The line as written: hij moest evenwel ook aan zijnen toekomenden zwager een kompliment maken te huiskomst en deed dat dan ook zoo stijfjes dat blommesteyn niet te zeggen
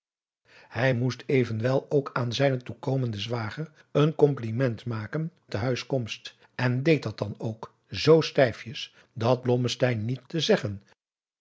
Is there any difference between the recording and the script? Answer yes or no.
no